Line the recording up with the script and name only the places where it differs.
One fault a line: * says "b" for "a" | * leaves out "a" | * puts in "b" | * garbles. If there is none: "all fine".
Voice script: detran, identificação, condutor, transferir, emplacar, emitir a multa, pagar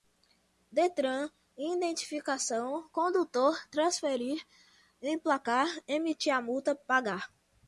all fine